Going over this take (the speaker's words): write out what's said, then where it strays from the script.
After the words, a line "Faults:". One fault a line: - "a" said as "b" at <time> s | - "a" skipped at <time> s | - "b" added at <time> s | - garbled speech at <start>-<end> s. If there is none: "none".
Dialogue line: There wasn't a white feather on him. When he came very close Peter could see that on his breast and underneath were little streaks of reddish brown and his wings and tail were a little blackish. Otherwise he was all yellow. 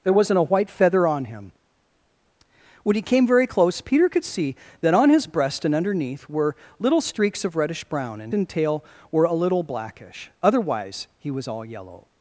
There wasn't a white feather on him. When he came very close Peter could see that on his breast and underneath were little streaks of reddish brown and and tail were a little blackish. Otherwise he was all yellow.
Faults:
- "his wings" skipped at 8.3 s